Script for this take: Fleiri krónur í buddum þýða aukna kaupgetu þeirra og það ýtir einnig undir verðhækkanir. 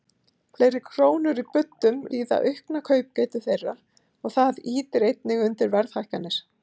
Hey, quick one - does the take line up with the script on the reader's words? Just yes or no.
yes